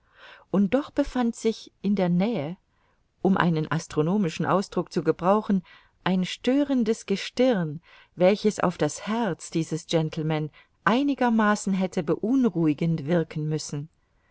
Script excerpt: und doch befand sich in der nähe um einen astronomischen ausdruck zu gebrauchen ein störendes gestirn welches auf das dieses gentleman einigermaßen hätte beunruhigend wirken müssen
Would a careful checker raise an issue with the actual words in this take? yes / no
yes